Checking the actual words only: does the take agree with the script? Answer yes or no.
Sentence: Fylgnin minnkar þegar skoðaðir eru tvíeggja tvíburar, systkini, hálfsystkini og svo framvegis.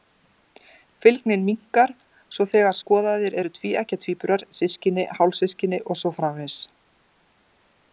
no